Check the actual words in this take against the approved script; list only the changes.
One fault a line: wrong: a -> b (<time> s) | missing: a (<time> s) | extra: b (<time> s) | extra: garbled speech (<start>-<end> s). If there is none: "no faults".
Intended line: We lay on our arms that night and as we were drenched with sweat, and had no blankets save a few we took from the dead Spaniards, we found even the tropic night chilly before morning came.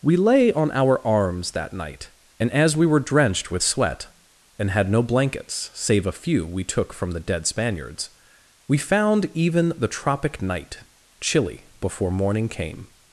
no faults